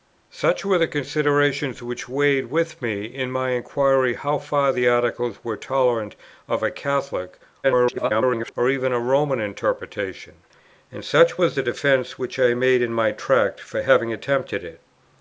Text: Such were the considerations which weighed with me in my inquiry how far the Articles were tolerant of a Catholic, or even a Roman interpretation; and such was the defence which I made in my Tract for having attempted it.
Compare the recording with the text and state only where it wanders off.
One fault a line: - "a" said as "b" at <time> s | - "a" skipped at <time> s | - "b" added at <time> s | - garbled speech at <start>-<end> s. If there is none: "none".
- garbled speech at 7.6-8.5 s